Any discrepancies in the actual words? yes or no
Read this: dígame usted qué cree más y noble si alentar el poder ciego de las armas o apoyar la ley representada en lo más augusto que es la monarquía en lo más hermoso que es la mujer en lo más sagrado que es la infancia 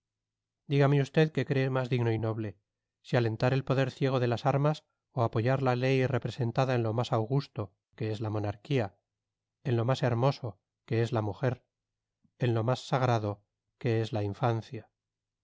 yes